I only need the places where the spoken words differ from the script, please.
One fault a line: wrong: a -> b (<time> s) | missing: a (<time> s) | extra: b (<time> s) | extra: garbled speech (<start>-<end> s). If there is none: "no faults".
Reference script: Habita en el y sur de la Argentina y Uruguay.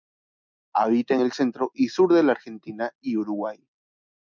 extra: centro (1.3 s)